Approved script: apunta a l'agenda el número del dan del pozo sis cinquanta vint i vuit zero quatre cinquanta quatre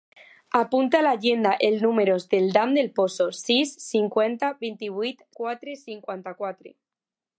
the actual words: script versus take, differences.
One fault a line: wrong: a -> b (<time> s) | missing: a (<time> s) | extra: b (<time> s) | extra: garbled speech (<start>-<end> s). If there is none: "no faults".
missing: zero (5.3 s)